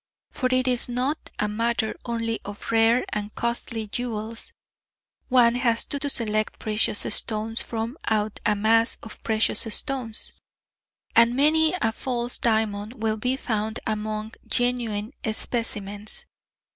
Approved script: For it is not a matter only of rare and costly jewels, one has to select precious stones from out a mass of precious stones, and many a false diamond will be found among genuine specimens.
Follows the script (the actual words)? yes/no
no